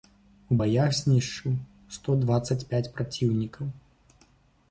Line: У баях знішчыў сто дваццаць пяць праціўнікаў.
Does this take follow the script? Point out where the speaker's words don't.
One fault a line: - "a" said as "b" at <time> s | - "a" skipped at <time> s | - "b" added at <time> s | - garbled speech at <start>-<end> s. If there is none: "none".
none